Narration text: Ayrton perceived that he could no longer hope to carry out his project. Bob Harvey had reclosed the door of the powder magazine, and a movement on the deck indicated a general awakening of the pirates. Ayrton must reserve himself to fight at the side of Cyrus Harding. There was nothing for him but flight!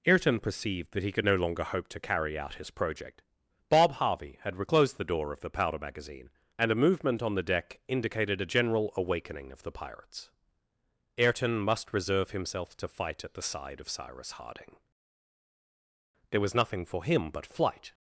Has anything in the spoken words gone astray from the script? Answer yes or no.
no